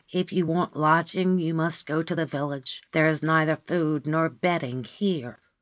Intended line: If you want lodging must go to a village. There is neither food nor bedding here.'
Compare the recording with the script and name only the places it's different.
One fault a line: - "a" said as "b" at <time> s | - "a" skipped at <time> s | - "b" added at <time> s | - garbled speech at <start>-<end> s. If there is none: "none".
- "you" added at 1.4 s
- "a" said as "the" at 2.1 s